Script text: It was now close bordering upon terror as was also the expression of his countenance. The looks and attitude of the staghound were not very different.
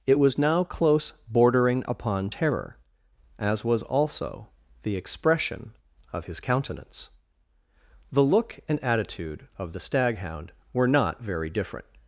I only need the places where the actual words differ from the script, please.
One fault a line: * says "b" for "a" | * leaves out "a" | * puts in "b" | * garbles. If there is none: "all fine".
* says "look" for "looks"